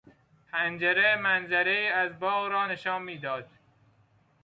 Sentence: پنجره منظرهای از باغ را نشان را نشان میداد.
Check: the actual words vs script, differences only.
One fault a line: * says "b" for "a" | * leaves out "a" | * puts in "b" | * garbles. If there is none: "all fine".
* leaves out "را نشان"